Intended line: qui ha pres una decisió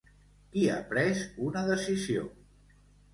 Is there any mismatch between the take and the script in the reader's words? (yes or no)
no